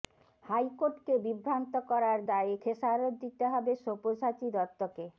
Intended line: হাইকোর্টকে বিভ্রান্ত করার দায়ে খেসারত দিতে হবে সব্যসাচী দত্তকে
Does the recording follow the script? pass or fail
pass